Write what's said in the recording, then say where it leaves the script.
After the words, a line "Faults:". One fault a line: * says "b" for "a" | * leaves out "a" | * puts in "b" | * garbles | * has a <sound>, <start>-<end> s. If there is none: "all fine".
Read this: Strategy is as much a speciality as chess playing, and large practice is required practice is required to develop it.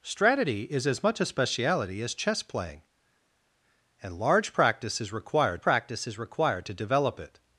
Strategy is as much a speciality as chess playing, and large practice is required practice is required to develop it.
Faults:
all fine